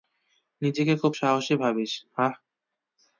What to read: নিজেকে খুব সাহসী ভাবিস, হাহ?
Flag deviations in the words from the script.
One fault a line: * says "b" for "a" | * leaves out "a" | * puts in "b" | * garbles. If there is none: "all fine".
all fine